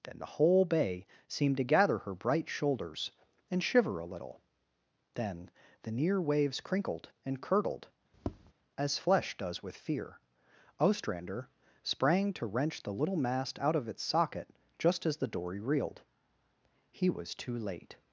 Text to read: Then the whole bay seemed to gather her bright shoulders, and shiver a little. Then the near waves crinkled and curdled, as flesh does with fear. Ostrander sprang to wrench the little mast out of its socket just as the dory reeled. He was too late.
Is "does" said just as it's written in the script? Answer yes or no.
yes